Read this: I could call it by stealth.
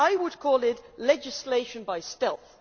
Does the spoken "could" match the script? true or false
false